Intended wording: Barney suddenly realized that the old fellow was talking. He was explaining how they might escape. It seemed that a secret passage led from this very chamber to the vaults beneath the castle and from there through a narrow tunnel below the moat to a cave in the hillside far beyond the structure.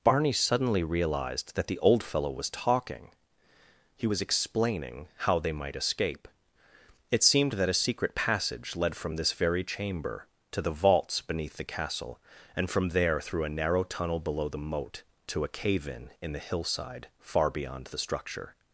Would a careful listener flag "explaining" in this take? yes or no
no